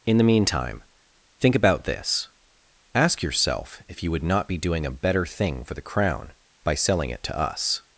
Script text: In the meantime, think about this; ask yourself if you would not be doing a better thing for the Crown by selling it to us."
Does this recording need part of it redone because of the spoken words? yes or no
no